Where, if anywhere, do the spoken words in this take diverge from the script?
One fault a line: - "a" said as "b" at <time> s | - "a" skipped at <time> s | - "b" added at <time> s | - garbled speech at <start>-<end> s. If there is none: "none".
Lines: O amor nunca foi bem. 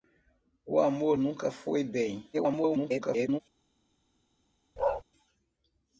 - garbled speech at 2.3-3.4 s